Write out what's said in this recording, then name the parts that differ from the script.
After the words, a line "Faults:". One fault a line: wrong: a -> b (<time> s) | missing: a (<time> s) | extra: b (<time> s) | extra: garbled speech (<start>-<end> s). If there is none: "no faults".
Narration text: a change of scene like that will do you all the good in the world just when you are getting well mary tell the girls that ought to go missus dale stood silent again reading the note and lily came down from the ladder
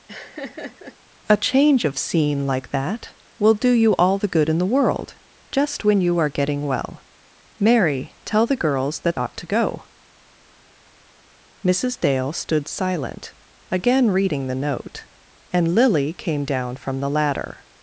a change of scene like that will do you all the good in the world just when you are getting well mary tell the girls that ought to go missus dale stood silent again reading the note and lily came down from the ladder
Faults:
no faults